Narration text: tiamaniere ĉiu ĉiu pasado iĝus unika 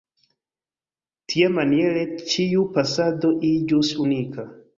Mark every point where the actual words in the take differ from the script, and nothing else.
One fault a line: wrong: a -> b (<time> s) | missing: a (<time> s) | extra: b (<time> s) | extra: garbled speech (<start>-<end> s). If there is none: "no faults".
missing: ĉiu (2.6 s)